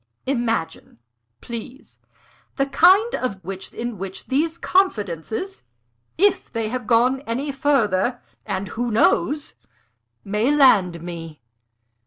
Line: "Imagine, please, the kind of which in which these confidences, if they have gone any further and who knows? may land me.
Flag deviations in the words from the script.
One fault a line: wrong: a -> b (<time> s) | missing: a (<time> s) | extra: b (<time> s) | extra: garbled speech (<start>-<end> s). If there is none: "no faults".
no faults